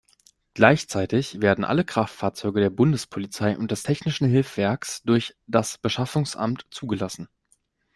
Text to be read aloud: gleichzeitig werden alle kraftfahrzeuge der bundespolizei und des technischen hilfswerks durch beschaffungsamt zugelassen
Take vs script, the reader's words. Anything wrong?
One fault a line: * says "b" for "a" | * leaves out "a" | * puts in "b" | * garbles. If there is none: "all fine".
* puts in "das"